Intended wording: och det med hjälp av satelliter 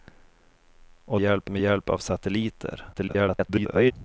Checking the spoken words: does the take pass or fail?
fail